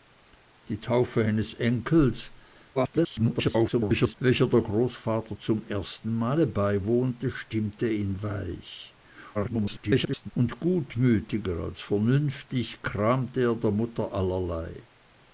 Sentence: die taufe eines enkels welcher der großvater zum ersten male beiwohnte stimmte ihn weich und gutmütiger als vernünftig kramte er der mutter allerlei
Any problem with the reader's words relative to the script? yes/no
yes